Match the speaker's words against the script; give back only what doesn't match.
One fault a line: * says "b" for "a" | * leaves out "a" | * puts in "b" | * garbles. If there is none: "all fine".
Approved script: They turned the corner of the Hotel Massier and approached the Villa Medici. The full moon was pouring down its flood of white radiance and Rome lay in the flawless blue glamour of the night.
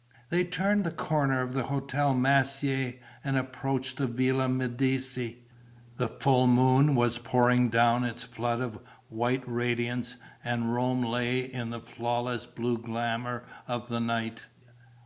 all fine